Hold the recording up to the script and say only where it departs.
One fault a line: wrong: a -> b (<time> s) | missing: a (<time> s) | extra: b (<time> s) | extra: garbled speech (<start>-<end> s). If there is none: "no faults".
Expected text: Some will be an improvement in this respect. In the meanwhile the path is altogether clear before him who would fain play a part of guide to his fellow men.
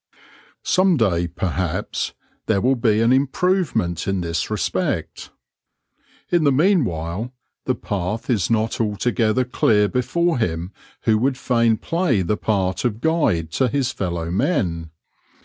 extra: day perhaps there (1.0 s)
extra: not (8.5 s)
wrong: a -> the (12.2 s)